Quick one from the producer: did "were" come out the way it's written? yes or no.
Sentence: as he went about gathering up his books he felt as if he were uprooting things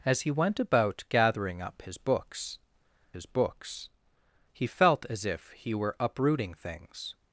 yes